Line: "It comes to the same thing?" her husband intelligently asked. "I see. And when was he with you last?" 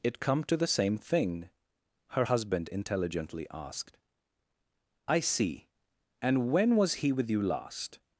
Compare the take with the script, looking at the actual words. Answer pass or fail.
fail